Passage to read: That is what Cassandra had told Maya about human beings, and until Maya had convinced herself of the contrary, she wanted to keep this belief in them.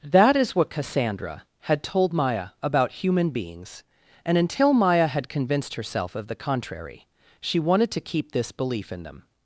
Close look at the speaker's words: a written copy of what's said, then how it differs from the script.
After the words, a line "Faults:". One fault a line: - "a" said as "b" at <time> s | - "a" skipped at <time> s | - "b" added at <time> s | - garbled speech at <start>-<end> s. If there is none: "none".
That is what Cassandra had told Maya about human beings, and until Maya had convinced herself of the contrary, she wanted to keep this belief in them.
Faults:
none